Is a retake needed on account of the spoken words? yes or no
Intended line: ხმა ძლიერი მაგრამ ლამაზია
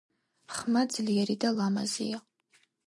yes